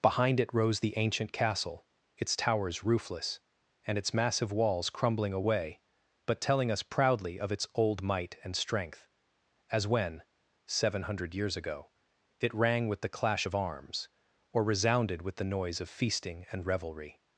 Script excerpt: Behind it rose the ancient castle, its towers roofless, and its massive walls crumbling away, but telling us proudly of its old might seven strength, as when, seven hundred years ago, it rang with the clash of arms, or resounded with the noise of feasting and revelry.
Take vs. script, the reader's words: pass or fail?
fail